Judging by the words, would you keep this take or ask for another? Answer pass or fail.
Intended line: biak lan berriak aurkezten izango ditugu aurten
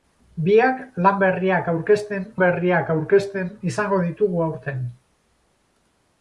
fail